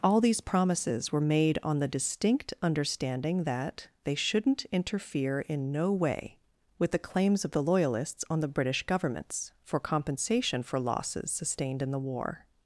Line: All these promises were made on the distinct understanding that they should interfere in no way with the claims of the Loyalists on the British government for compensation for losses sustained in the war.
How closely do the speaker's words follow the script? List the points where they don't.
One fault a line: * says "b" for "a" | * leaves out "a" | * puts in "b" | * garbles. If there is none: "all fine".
* says "shouldn't" for "should"
* says "governments" for "government"